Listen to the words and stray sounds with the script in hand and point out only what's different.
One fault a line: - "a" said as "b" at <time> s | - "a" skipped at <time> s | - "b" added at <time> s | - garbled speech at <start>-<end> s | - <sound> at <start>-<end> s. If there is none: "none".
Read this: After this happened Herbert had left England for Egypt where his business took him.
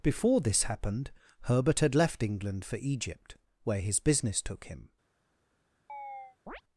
- "After" said as "Before" at 0.0 s
- chirp at 5.9-6.6 s